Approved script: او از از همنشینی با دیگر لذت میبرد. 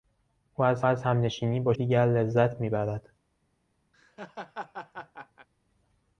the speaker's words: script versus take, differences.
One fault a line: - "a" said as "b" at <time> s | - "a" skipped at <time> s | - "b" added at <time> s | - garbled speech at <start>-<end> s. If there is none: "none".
none